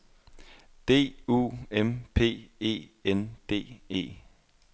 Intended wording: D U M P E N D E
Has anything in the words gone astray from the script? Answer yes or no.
no